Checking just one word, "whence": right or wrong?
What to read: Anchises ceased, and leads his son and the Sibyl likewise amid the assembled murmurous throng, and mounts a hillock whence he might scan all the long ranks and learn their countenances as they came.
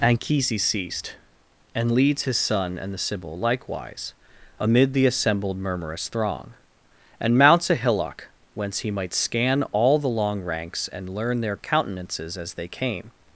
right